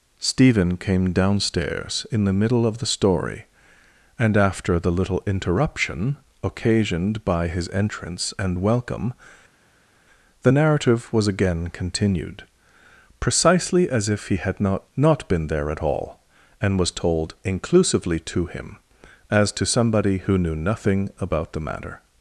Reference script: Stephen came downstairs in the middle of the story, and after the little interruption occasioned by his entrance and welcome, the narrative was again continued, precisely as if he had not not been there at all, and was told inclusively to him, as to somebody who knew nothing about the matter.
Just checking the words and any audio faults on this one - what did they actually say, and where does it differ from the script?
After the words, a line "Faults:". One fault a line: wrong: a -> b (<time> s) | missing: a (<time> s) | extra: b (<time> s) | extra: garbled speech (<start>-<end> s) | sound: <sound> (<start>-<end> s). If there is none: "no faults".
Stephen came downstairs in the middle of the story, and after the little interruption occasioned by his entrance and welcome, the narrative was again continued, precisely as if he had not not been there at all, and was told inclusively to him, as to somebody who knew nothing about the matter.
Faults:
no faults